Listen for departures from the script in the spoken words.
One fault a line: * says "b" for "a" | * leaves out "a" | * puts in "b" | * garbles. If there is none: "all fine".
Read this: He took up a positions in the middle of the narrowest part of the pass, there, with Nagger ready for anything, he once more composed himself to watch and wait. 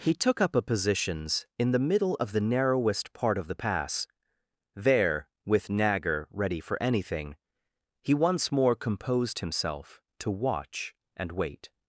all fine